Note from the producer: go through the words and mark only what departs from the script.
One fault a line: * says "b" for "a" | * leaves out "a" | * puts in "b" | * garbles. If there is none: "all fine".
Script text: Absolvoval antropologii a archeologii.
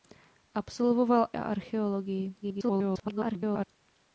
* leaves out "antropologii"
* garbles